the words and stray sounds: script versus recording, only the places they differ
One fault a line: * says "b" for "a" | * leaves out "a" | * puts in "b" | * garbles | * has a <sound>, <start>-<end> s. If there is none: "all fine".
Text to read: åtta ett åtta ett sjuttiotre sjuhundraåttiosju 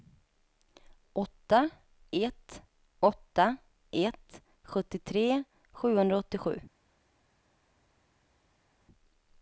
all fine